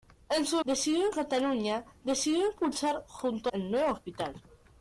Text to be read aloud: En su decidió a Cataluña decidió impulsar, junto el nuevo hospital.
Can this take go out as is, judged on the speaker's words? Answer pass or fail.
pass